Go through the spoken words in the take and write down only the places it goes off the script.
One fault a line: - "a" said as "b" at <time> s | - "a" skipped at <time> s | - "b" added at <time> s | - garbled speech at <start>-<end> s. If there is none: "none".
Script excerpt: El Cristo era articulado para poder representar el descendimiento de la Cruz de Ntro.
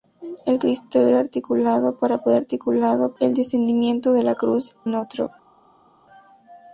- "representar" said as "articulado" at 2.4 s
- "de" skipped at 4.8 s